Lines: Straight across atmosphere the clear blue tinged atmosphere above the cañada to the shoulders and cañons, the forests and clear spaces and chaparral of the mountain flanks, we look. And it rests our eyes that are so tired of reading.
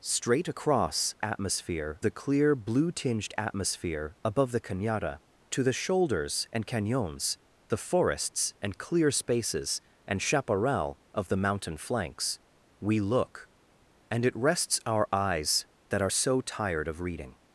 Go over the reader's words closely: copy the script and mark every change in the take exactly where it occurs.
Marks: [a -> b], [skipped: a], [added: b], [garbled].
Straight across atmosphere the clear blue tinged atmosphere above the cañada to the shoulders and cañons, the forests and clear spaces and chaparral of the mountain flanks, we look. And it rests our eyes that are so tired of reading.